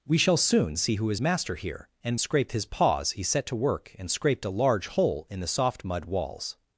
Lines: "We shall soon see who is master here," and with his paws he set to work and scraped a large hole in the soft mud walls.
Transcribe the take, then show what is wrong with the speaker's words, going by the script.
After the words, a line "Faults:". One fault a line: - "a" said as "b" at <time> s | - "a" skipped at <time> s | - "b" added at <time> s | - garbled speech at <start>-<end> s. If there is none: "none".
"We shall soon see who is master here," and scraped his paws he set to work and scraped a large hole in the soft mud walls.
Faults:
- "with" said as "scraped" at 2.2 s